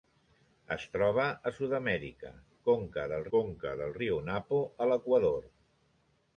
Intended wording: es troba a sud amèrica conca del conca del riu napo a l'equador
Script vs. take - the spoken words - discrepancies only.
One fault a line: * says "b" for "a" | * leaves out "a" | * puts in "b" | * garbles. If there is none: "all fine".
all fine